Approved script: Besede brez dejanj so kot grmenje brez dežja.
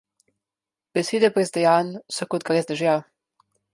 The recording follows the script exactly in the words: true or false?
false